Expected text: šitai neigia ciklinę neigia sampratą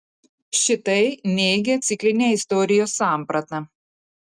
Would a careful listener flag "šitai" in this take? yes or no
no